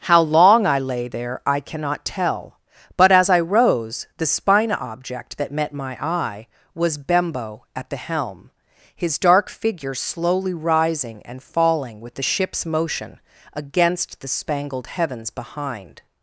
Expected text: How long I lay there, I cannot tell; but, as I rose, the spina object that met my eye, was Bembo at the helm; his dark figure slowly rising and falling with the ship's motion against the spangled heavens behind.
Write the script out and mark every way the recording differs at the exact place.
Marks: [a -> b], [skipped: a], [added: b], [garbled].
How long I lay there, I cannot tell; but, as I rose, the spina object that met my eye, was Bembo at the helm; his dark figure slowly rising and falling with the ship's motion against the spangled heavens behind.